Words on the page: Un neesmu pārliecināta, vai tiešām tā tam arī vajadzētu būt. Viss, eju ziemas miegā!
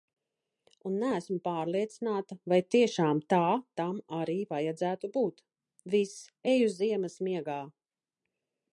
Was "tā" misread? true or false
false